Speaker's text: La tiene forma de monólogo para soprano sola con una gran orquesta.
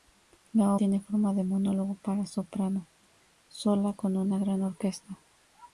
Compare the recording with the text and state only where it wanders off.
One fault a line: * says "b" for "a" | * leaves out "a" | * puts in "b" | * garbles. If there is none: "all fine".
all fine